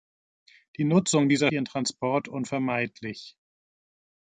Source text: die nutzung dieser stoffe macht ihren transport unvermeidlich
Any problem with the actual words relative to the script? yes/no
yes